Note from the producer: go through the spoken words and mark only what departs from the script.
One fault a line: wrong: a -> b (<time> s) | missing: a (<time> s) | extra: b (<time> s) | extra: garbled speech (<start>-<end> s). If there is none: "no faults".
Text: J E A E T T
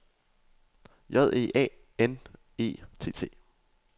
extra: N (2.0 s)